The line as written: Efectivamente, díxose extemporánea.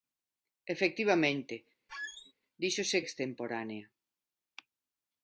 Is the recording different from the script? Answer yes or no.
no